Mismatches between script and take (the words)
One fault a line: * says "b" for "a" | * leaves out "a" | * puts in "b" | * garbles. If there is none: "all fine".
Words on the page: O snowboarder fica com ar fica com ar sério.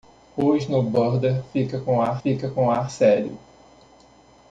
all fine